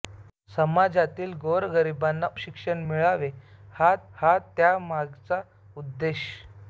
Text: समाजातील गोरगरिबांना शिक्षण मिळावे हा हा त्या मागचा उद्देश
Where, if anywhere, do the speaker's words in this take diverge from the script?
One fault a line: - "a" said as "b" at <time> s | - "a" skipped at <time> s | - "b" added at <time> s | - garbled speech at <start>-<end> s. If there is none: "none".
none